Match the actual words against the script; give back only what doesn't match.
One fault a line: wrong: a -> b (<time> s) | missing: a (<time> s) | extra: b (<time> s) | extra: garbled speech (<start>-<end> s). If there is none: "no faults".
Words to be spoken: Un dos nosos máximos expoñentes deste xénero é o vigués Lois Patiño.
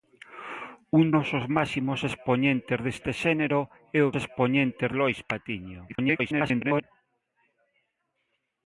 missing: dos (1.1 s)
wrong: vigués -> expoñentes (4.2 s)
extra: garbled speech (5.9-6.8 s)